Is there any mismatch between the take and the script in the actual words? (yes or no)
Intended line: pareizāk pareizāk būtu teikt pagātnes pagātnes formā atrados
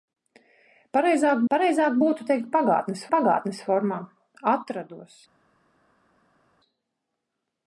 no